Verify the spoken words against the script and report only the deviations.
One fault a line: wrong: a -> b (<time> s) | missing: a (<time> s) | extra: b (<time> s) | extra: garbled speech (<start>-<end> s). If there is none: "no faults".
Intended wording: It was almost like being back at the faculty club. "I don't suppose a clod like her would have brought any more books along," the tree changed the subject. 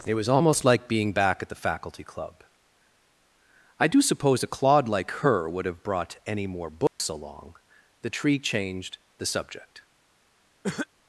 wrong: don't -> do (3.9 s)